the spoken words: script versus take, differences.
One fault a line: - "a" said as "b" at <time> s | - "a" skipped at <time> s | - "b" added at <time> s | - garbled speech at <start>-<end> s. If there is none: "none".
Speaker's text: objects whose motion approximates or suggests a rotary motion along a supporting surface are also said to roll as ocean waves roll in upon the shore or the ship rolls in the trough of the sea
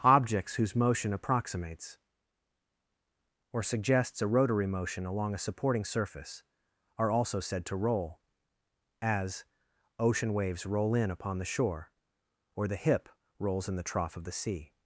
- "ship" said as "hip" at 12.8 s